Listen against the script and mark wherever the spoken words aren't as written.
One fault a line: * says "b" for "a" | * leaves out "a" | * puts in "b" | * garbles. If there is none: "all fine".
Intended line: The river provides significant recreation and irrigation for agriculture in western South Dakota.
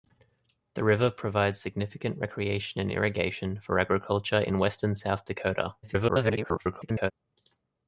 * garbles